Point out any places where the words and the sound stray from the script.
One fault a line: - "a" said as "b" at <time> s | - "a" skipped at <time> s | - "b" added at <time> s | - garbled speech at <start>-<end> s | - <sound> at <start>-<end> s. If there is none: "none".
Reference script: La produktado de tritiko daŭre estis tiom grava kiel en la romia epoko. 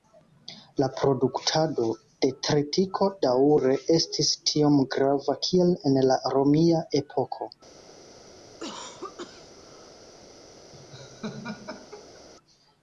- cough at 8.4-10.0 s
- laugh at 10.7-12.2 s